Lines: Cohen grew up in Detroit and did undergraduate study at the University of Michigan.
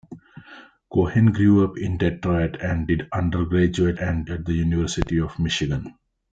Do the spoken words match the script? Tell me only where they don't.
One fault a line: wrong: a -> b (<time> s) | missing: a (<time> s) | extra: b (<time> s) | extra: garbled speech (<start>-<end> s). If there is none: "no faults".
wrong: study -> and (4.0 s)